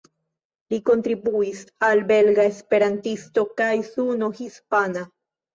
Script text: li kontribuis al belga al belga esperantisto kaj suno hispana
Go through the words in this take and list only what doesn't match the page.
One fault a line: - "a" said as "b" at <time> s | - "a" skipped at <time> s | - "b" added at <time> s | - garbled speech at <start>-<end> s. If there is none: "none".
- "al belga" skipped at 2.4 s